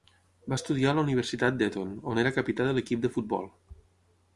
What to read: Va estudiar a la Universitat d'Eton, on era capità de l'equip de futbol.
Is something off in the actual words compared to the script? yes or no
no